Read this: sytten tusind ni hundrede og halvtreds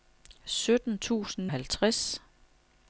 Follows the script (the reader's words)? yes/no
no